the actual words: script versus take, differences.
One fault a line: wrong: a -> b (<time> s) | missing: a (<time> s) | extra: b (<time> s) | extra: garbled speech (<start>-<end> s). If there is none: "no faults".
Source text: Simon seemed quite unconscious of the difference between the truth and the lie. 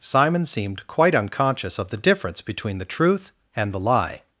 no faults